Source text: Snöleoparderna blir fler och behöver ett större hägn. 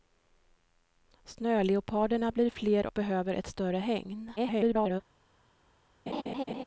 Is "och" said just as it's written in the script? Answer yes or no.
no